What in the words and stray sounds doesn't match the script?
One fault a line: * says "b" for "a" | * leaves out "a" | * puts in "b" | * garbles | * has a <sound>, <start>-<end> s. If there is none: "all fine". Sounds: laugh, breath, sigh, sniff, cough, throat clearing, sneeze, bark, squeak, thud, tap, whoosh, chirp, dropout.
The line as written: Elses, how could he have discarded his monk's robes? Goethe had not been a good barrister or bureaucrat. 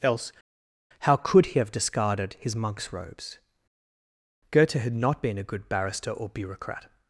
* says "Else" for "Elses"